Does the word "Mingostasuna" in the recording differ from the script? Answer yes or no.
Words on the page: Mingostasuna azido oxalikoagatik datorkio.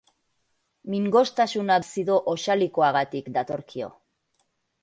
no